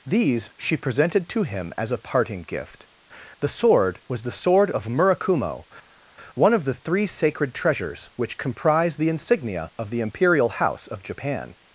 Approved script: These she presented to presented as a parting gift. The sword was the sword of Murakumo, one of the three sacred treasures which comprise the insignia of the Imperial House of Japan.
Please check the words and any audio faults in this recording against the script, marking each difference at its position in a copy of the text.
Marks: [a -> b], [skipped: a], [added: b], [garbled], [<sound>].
These she presented to [presented -> him] as a parting gift. The sword was the sword of Murakumo, one of the three sacred treasures which comprise the insignia of the Imperial House of Japan.